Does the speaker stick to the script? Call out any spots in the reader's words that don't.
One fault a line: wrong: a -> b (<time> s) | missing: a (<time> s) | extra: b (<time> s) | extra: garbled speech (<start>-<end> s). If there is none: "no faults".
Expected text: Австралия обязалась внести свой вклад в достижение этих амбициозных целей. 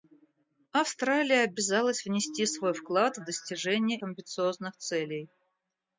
missing: этих (4.0 s)